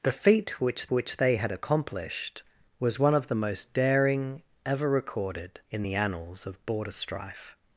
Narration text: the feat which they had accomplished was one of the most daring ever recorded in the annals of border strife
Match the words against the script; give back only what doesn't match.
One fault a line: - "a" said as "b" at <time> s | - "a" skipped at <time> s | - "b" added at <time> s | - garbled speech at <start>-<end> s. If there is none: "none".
- "which" added at 0.9 s